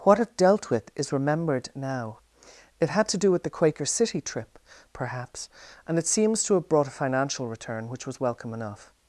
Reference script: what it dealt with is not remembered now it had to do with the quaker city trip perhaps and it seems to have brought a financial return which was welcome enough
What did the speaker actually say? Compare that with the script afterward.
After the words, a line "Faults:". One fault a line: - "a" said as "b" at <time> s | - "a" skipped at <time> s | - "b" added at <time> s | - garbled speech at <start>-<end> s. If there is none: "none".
what it dealt with is remembered now it had to do with the quaker city trip perhaps and it seems to have brought a financial return which was welcome enough
Faults:
- "not" skipped at 1.1 s